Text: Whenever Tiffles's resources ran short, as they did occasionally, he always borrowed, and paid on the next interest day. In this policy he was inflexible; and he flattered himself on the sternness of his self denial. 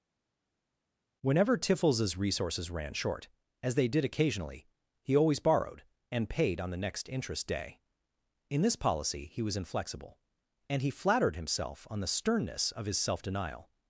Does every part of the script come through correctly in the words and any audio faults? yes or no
yes